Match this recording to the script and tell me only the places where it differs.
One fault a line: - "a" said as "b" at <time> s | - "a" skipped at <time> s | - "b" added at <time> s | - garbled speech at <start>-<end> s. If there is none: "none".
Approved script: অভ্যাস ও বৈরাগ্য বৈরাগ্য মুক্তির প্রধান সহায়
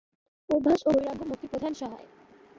- "বৈরাগ্য" skipped at 1.2 s